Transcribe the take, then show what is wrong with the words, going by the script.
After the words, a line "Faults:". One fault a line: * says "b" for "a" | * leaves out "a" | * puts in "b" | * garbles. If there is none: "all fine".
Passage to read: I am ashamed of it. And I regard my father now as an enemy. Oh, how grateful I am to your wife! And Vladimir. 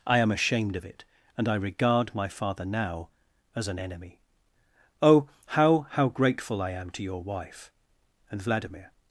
I am ashamed of it. And I regard my father now as an enemy. Oh, how how grateful I am to your wife! And Vladimir.
Faults:
* puts in "how"